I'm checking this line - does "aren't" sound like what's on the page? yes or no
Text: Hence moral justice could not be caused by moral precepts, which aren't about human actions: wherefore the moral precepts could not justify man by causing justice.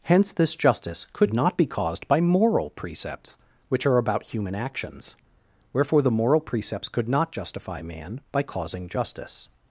no